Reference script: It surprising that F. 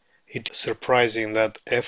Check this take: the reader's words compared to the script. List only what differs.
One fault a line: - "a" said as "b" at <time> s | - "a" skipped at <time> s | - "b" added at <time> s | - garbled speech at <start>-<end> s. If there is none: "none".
none